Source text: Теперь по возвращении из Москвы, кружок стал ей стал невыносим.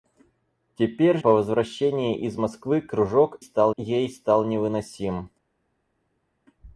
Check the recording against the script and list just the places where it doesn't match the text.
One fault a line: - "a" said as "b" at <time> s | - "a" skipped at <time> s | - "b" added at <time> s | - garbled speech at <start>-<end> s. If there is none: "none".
none